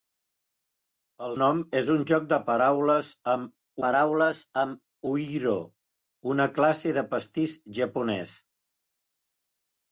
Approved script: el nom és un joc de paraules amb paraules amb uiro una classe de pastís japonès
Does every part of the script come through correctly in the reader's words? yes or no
yes